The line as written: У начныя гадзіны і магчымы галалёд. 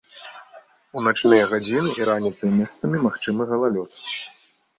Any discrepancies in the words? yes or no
yes